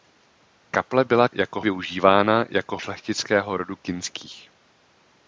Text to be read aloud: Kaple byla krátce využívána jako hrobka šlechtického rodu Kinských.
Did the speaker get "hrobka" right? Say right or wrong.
wrong